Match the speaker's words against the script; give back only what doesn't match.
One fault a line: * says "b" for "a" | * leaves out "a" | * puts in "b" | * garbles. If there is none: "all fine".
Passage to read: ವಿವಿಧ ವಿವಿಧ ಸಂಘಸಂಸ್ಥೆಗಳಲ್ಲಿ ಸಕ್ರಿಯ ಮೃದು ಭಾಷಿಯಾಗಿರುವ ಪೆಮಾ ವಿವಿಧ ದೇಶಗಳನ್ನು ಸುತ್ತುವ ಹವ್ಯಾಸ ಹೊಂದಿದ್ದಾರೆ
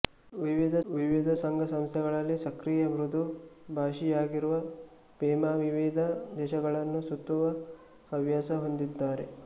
all fine